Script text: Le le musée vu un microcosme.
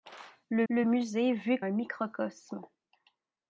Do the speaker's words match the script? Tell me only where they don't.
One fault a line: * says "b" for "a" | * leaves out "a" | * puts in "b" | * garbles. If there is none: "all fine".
all fine